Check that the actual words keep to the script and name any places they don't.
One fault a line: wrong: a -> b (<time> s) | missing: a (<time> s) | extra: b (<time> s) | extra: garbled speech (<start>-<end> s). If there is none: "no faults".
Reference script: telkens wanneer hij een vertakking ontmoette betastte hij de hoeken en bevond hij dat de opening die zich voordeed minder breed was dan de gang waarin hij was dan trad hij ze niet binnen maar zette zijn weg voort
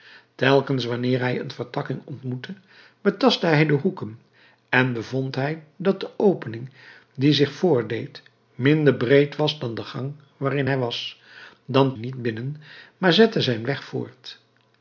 missing: trad hij ze (12.0 s)